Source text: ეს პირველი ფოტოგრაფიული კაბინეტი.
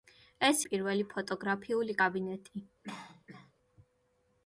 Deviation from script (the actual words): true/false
false